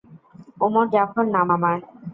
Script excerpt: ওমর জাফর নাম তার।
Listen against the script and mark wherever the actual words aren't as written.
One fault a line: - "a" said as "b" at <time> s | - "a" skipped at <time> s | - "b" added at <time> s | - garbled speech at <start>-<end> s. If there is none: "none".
- "তার" said as "আমার" at 1.5 s